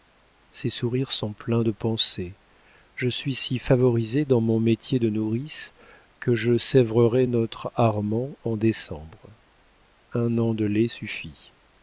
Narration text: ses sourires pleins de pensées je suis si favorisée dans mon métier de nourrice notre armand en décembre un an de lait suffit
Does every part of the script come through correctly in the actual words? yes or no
no